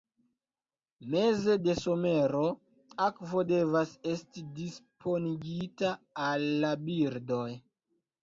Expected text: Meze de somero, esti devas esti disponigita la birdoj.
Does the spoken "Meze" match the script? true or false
true